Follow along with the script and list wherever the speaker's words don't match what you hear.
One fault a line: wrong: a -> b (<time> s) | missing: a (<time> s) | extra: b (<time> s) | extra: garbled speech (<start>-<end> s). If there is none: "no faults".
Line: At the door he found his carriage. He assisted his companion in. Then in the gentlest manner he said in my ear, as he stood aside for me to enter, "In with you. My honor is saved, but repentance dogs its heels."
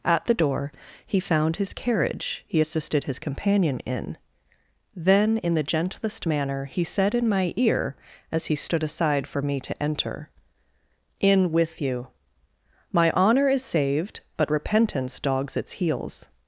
no faults